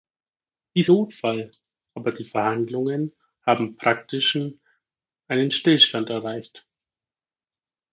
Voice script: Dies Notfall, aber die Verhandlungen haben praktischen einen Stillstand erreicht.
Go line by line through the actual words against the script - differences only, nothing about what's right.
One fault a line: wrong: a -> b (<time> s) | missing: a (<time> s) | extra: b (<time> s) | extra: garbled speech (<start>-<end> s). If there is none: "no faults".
no faults